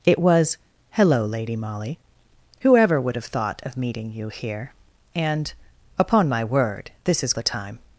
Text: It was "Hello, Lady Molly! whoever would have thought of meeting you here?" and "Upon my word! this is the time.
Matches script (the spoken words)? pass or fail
pass